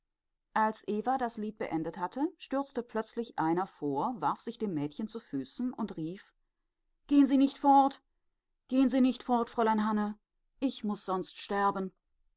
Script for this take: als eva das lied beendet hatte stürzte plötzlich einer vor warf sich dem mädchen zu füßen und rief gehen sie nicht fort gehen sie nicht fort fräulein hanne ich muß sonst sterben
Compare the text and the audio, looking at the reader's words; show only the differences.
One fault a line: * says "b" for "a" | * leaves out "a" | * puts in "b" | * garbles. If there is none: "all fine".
all fine